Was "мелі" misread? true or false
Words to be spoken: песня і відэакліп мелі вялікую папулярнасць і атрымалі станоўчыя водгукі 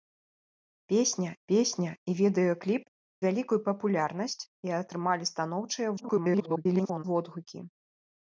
true